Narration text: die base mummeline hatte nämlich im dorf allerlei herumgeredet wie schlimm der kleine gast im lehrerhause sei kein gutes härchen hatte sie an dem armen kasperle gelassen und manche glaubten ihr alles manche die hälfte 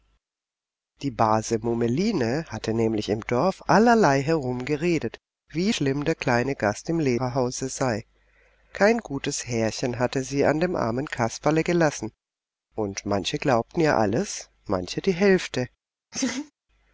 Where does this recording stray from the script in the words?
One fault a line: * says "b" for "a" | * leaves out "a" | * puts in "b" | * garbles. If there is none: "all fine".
all fine